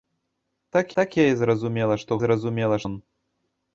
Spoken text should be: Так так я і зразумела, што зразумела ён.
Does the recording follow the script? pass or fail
pass